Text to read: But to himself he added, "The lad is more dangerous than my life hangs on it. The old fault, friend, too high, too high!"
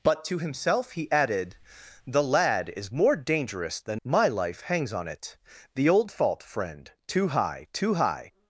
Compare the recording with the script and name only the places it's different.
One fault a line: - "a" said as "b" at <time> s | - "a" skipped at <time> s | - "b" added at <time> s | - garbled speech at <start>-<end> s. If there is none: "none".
none